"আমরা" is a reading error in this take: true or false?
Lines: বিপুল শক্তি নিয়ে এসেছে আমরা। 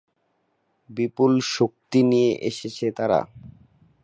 true